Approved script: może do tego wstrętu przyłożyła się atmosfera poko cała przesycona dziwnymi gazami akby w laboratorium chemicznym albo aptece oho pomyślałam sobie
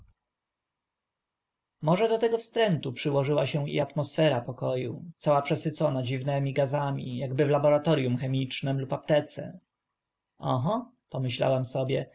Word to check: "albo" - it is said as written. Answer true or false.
false